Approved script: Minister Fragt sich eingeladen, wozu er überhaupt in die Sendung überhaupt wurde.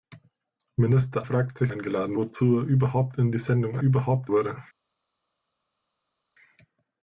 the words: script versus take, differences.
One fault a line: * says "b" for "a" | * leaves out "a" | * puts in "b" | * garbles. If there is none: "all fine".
all fine